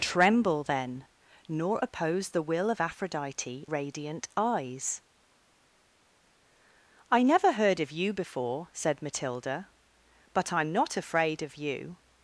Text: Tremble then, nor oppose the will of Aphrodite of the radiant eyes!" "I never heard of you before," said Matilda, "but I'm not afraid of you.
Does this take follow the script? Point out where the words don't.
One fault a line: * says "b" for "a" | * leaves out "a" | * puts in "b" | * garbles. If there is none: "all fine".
* leaves out "of the"